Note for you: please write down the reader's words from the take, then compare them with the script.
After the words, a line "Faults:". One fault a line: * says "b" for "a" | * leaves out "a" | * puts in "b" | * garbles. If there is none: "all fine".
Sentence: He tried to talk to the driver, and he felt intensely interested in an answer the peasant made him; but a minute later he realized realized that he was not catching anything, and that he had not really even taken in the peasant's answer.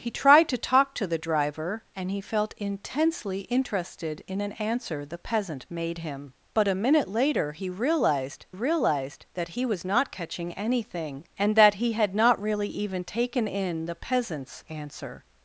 He tried to talk to the driver, and he felt intensely interested in an answer the peasant made him; but a minute later he realized realized that he was not catching anything, and that he had not really even taken in the peasant's answer.
Faults:
all fine